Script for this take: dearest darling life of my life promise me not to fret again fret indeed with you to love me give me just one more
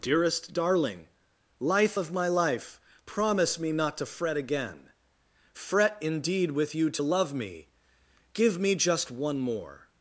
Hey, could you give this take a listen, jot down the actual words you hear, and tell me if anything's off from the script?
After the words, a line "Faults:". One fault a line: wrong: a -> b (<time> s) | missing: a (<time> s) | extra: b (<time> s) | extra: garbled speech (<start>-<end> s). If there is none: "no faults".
dearest darling life of my life promise me not to fret again fret indeed with you to love me give me just one more
Faults:
no faults